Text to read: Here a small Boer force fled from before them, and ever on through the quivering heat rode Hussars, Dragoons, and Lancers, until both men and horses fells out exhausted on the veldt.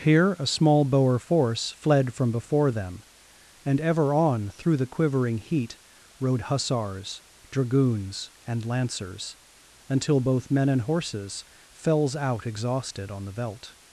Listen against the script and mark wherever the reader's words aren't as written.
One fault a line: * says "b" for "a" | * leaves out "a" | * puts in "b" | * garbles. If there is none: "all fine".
all fine